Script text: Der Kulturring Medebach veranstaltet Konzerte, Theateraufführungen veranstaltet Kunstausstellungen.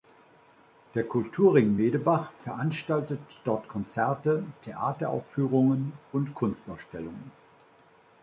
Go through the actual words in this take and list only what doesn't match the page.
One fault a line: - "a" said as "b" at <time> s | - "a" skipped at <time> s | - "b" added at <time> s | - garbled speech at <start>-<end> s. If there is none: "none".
- "dort" added at 3.4 s
- "veranstaltet" said as "und" at 6.1 s